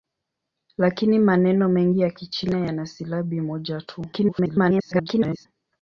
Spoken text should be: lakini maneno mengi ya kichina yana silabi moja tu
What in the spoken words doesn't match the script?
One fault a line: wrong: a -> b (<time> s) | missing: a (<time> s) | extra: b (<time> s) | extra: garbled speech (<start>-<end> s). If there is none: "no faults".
extra: garbled speech (4.1-5.5 s)